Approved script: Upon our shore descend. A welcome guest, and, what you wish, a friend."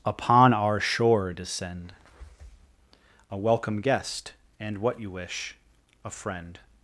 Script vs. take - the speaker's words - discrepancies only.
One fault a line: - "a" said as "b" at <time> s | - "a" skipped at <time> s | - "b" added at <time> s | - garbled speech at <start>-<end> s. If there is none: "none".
none